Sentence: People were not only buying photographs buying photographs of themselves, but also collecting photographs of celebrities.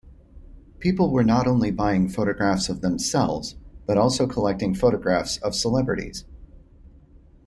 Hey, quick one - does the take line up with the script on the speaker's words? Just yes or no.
no